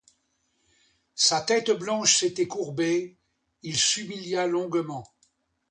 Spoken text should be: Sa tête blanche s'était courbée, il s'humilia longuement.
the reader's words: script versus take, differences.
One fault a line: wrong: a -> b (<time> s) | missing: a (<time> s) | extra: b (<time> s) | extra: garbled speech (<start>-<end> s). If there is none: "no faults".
no faults